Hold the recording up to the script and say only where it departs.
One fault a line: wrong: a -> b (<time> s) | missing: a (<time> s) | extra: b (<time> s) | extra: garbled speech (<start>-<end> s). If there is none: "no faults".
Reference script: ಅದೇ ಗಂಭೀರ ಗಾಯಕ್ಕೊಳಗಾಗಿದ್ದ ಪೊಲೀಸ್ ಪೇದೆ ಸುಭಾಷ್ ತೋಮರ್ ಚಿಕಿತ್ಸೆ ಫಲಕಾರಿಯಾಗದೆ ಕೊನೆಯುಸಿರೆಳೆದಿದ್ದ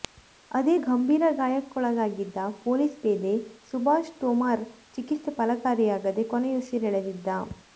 no faults